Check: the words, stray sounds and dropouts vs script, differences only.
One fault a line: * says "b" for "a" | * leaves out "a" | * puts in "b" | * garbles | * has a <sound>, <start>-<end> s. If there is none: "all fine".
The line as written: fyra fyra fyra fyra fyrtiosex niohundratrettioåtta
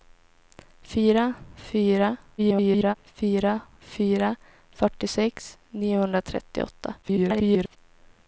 * garbles
* garbles